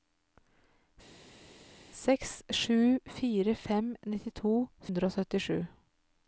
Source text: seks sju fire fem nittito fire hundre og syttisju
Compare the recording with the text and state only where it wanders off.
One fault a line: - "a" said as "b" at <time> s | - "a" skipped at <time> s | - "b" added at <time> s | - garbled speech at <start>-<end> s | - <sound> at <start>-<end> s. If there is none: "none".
- "fire" skipped at 4.5 s